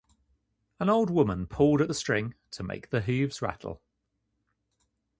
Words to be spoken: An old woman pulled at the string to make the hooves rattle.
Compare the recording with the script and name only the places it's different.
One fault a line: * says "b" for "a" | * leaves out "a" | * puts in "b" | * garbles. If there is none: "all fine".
all fine